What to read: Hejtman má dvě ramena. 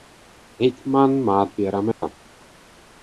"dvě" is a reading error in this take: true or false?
false